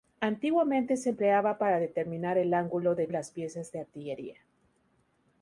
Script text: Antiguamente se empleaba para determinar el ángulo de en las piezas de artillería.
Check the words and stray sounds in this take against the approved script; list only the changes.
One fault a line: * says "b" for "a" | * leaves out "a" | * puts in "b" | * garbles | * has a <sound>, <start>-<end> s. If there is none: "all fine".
all fine